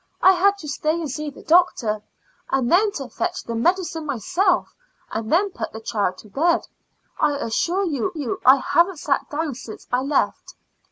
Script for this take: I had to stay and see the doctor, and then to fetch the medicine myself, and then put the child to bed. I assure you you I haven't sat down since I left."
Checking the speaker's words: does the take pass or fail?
pass